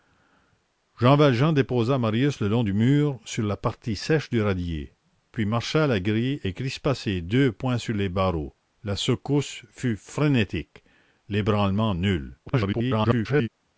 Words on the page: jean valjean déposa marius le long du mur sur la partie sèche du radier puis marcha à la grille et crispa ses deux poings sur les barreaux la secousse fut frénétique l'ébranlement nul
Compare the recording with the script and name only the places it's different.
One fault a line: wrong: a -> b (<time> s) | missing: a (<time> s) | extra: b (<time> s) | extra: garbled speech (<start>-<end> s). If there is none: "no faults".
extra: garbled speech (12.5-13.5 s)